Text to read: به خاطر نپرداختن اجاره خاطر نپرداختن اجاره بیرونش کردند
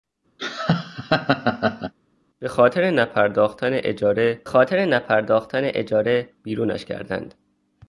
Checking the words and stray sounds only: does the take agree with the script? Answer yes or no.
no